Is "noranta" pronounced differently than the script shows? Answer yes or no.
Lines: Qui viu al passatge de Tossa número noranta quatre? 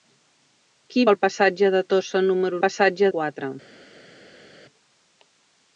yes